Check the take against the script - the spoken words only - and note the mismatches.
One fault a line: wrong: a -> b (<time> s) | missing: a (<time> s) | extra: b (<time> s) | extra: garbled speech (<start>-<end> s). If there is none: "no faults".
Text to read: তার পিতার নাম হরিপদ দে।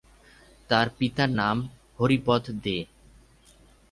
no faults